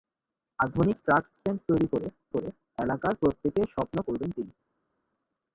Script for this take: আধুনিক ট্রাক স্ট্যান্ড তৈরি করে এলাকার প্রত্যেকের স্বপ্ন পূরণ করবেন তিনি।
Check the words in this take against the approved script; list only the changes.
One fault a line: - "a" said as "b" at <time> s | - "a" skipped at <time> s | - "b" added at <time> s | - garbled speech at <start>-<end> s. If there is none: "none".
- "করে" added at 2.3 s
- "পূরণ" skipped at 4.0 s